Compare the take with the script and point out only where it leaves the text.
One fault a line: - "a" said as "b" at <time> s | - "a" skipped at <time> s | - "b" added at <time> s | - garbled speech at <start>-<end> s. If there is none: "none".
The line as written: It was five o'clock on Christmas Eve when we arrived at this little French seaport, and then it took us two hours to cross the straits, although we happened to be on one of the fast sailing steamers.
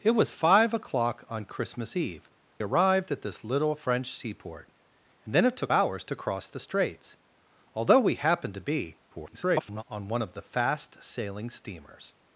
- "when we" skipped at 2.3 s
- "us two" skipped at 5.7 s
- garbled speech at 9.1-9.8 s